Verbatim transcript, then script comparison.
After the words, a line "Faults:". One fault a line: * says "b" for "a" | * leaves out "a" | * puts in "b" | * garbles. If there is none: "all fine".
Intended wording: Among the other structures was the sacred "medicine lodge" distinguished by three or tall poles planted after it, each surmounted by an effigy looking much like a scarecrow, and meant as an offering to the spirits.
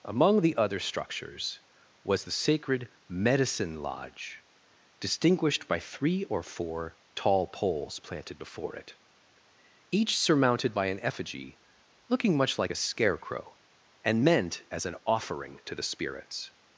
Among the other structures was the sacred "medicine lodge" distinguished by three or four tall poles planted before it, each surmounted by an effigy looking much like a scarecrow, and meant as an offering to the spirits.
Faults:
* puts in "four"
* says "before" for "after"